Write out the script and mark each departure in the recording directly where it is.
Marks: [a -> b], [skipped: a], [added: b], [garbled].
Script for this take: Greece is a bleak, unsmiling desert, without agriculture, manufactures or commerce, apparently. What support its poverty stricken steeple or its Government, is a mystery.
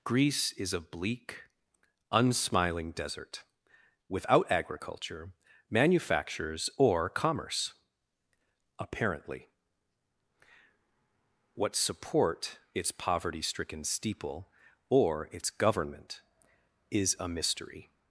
Greece is a bleak, unsmiling desert, without agriculture, manufactures or commerce, apparently. What support its poverty stricken steeple or its Government, is a mystery.